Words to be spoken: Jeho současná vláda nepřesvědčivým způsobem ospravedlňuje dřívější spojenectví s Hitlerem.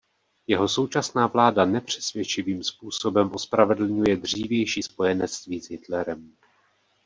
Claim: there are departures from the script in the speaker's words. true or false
false